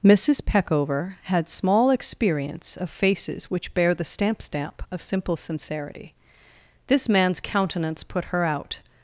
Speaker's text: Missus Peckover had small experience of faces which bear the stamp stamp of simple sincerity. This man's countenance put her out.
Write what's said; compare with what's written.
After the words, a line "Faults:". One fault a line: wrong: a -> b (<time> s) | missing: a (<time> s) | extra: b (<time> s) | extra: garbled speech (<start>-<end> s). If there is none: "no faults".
Missus Peckover had small experience of faces which bear the stamp stamp of simple sincerity. This man's countenance put her out.
Faults:
no faults